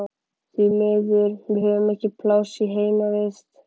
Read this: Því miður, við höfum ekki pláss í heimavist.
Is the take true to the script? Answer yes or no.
yes